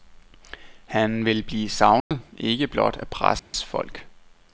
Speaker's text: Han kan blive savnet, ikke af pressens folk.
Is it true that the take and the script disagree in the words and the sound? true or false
true